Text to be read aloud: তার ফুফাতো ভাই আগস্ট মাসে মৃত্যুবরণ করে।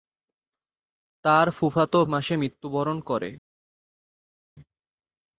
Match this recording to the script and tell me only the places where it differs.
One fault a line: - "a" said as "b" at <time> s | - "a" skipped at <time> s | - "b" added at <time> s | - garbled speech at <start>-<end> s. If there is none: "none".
- "ভাই আগস্ট" skipped at 2.0 s